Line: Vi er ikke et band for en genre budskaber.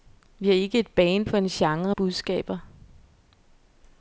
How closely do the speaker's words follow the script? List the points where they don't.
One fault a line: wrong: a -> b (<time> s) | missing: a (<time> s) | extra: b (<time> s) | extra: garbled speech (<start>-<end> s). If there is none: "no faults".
no faults